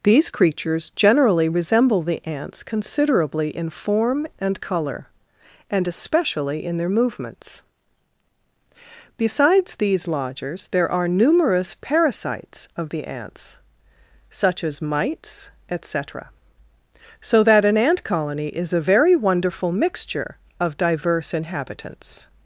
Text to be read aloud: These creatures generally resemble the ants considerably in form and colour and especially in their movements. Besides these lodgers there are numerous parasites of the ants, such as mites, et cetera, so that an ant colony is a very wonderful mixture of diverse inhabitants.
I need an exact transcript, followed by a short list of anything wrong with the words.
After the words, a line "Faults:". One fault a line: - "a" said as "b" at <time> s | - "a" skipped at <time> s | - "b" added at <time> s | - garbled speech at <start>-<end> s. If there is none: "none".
These creatures generally resemble the ants considerably in form and colour and especially in their movements. Besides these lodgers there are numerous parasites of the ants, such as mites, et cetera, so that an ant colony is a very wonderful mixture of diverse inhabitants.
Faults:
none